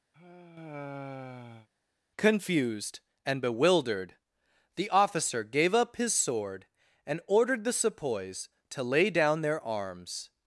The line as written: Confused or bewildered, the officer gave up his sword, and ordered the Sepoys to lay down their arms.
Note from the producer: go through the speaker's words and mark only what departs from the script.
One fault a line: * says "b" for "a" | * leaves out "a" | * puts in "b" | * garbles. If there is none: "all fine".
* says "and" for "or"